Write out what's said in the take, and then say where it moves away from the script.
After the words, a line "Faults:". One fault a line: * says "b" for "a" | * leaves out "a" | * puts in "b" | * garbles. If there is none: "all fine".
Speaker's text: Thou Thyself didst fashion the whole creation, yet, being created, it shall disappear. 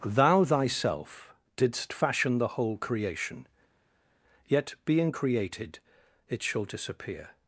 Thou Thyself didst fashion the whole creation, yet, being created, it shall disappear.
Faults:
all fine